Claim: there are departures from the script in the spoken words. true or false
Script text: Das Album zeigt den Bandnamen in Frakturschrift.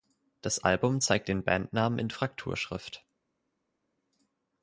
false